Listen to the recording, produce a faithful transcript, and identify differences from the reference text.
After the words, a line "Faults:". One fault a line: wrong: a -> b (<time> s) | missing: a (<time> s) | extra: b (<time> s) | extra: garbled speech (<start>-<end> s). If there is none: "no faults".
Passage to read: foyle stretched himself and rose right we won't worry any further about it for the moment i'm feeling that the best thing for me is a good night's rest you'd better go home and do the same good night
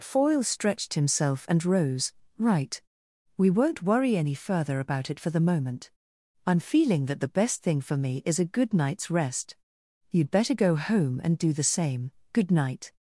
foyle stretched himself and rose right we won't worry any further about it for the moment i'm feeling that the best thing for me is a good night's rest you'd better go home and do the same good night
Faults:
no faults